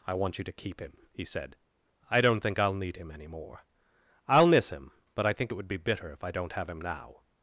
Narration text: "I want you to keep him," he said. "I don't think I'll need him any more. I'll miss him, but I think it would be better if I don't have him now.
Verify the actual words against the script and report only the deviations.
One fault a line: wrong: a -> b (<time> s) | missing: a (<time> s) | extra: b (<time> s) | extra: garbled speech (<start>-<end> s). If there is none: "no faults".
wrong: better -> bitter (5.8 s)